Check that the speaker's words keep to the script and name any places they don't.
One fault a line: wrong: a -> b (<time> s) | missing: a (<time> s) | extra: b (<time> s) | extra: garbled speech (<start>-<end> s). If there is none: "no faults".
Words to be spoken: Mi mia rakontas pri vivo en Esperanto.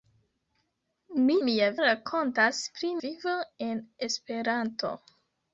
no faults